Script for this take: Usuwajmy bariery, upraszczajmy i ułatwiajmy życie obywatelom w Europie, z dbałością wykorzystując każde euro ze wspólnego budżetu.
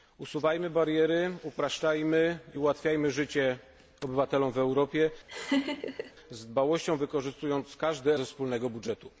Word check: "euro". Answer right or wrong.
wrong